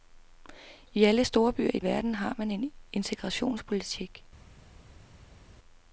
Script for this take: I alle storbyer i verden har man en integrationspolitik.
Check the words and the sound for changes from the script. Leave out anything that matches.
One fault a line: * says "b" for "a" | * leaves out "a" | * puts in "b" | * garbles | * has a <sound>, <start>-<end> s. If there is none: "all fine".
all fine